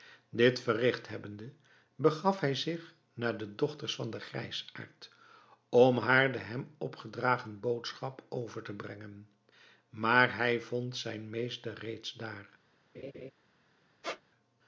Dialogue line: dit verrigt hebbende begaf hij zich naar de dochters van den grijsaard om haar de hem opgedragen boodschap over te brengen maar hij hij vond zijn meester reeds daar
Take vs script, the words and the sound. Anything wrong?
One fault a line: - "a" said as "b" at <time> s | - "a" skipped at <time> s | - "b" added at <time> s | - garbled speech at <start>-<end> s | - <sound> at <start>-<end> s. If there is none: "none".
- "hij" skipped at 10.6 s
- laugh at 12.9-13.3 s
- squeak at 14.0-14.2 s